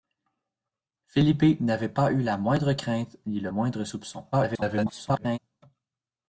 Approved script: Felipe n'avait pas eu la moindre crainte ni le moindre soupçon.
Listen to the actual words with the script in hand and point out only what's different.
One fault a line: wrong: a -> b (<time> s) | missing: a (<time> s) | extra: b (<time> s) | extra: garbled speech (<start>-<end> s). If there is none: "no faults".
extra: garbled speech (4.3-5.4 s)